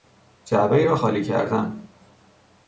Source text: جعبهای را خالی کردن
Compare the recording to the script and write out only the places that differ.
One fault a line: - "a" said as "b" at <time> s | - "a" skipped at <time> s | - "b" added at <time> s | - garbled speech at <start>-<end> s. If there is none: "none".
none